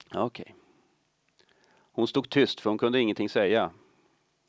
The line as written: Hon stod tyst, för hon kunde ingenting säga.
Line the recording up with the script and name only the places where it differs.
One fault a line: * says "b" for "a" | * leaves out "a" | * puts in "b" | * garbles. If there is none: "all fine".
all fine